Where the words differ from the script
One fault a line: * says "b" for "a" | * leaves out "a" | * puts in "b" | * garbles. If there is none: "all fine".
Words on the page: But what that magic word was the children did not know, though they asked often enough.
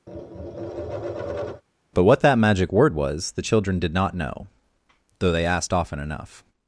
all fine